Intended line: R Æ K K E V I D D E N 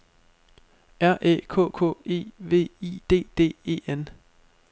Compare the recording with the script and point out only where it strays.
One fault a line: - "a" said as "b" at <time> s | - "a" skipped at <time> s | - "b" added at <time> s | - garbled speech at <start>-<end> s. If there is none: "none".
none